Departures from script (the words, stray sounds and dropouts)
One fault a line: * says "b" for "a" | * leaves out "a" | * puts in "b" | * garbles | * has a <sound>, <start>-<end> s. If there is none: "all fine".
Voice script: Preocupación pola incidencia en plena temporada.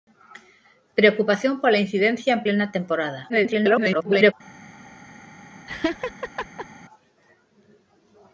* garbles
* has a laugh, 5.7-6.7 s